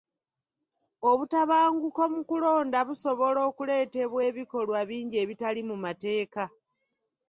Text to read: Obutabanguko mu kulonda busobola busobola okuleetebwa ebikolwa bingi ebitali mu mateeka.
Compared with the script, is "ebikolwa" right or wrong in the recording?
right